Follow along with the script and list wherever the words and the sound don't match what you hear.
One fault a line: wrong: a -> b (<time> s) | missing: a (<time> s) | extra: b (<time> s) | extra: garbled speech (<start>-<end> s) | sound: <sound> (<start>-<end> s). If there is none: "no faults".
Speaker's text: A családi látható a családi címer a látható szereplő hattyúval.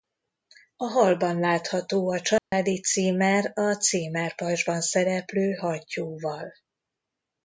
wrong: családi -> hallban (0.8 s)
sound: dropout (2.4-2.5 s)
wrong: látható -> címerpajzsban (3.7 s)